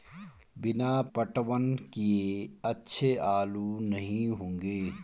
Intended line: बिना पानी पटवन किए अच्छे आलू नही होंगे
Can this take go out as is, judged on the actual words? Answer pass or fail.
fail